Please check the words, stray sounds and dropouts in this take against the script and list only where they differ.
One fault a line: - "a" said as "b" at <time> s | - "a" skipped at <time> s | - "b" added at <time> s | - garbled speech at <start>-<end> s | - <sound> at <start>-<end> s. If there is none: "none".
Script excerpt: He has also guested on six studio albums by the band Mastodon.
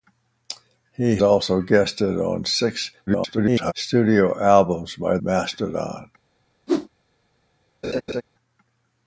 - "has" skipped at 1.2 s
- garbled speech at 3.1-3.7 s
- "the band" skipped at 5.2 s
- whoosh at 6.7-6.9 s
- laugh at 7.8-8.2 s